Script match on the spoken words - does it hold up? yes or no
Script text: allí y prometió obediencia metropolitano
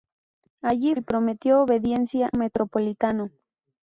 yes